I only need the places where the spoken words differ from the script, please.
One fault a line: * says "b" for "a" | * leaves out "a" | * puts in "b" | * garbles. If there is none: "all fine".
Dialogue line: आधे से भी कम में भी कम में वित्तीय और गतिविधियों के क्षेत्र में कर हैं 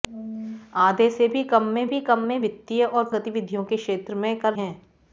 all fine